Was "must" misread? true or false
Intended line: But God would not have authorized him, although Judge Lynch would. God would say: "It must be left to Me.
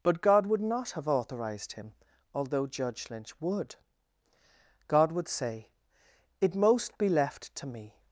true